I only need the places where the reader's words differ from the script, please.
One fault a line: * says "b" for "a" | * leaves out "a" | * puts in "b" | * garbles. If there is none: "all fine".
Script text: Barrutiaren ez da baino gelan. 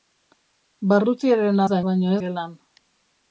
all fine